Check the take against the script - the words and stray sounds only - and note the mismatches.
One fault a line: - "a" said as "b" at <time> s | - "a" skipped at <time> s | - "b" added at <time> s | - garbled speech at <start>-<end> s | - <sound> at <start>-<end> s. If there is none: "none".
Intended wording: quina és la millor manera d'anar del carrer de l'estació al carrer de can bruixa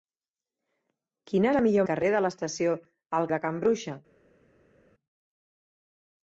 - "és" skipped at 1.5 s
- "manera d'anar del" skipped at 1.9 s
- "carrer" skipped at 3.3 s